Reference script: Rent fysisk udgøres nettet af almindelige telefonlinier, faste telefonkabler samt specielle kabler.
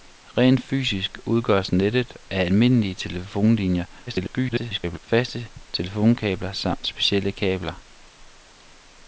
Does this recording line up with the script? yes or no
no